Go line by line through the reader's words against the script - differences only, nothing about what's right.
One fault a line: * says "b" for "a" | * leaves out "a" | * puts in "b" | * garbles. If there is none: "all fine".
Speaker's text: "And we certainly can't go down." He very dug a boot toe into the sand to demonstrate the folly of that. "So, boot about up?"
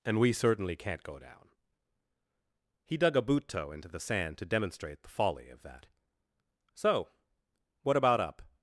* leaves out "very"
* says "what" for "boot"